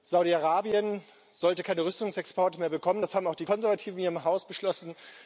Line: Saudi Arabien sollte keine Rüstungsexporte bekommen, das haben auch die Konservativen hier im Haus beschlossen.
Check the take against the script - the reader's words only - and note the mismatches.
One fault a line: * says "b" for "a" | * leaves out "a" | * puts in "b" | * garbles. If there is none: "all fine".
* puts in "mehr"